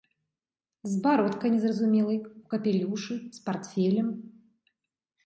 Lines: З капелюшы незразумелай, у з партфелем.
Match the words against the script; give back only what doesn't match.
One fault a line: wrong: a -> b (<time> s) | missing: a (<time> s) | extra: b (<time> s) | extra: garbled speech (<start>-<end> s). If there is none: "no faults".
wrong: капелюшы -> бародкай (1.0 s)
extra: капелюшы (2.5 s)